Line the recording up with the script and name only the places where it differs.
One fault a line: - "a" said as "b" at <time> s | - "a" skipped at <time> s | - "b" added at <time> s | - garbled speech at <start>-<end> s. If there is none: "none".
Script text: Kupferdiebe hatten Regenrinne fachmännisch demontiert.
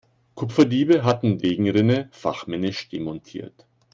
none